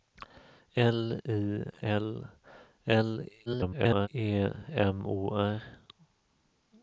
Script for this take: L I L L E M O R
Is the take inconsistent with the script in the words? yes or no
yes